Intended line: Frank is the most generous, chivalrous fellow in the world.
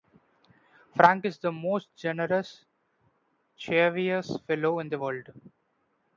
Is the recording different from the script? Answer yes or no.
no